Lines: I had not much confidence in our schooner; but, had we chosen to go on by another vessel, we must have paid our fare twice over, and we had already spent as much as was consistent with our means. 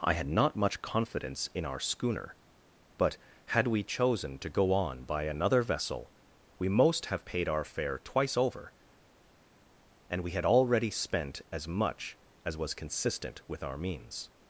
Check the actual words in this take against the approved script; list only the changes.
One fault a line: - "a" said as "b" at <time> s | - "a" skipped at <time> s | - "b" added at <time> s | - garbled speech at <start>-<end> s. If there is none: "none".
- "must" said as "most" at 6.7 s